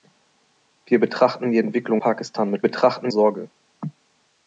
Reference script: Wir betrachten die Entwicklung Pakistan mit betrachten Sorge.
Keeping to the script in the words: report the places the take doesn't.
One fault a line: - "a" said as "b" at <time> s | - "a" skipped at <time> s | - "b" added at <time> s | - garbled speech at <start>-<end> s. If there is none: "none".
none